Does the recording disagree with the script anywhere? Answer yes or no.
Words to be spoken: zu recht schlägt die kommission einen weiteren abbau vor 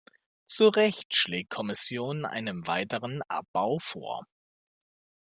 yes